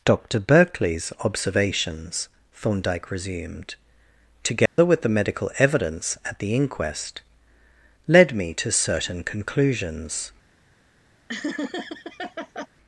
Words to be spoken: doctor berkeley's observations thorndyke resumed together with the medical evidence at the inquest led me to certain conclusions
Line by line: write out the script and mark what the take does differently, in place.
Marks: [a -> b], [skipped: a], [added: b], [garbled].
doctor berkeley's observations thorndyke resumed together with the medical evidence at the inquest led me to certain conclusions